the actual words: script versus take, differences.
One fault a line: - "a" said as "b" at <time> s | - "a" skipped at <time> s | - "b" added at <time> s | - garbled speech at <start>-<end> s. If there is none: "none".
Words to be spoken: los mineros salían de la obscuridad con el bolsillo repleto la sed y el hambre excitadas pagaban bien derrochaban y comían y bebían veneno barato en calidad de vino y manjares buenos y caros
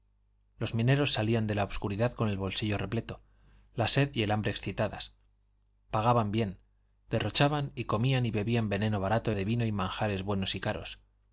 - "en calidad" skipped at 9.3 s